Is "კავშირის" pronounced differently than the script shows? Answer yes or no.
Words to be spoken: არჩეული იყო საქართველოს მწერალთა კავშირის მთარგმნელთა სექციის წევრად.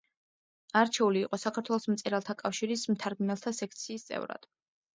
no